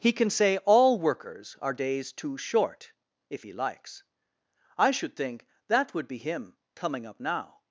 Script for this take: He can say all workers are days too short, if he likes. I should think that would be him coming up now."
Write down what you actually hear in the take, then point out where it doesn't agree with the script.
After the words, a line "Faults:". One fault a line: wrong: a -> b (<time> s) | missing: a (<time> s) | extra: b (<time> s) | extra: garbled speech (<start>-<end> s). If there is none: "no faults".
He can say all workers are days too short, if he likes. I should think that would be him coming up now."
Faults:
no faults